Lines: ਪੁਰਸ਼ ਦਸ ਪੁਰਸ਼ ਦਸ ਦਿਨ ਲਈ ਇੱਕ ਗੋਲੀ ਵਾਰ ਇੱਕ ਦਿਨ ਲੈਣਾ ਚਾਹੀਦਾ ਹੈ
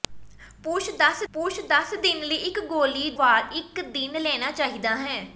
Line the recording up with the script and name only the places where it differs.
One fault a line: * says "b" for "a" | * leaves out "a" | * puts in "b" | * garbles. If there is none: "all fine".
all fine